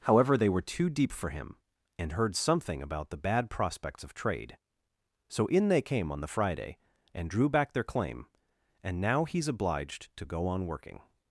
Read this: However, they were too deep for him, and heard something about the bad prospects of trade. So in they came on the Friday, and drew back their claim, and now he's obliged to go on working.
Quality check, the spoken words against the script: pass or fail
pass